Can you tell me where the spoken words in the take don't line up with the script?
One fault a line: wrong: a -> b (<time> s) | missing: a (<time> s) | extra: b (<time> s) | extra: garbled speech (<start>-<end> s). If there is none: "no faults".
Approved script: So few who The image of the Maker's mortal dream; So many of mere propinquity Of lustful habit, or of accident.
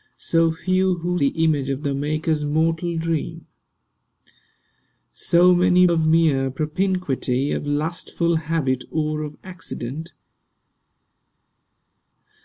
no faults